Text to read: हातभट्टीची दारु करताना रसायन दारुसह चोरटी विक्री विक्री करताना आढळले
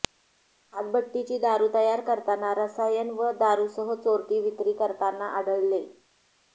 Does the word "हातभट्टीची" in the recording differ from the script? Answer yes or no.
no